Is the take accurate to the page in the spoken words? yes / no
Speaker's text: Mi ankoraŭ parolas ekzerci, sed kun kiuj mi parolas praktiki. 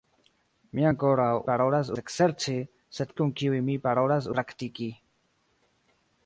yes